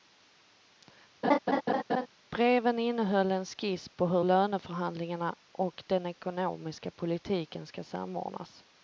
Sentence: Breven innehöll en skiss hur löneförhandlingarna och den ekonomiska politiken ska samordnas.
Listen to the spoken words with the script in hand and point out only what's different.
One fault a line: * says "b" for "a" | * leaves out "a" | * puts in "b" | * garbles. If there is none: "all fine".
* puts in "på"